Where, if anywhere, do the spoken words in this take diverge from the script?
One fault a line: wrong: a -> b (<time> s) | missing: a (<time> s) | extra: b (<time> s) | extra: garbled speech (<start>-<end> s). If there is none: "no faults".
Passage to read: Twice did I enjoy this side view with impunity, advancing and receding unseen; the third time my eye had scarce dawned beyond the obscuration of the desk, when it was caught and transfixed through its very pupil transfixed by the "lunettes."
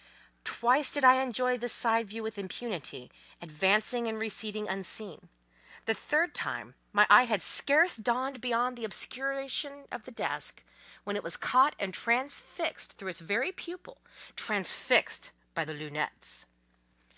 no faults